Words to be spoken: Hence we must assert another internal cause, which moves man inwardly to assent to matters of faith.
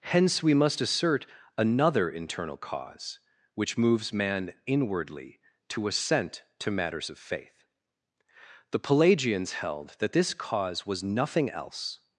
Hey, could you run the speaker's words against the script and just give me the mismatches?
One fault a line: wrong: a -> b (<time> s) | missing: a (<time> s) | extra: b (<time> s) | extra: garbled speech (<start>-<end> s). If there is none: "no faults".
extra: The Pelagians held that this cause was nothing else (8.7 s)